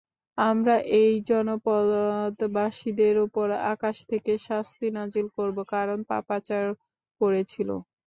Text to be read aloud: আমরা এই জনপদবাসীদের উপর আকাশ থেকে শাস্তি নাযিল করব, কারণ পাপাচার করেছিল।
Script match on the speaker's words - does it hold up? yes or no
yes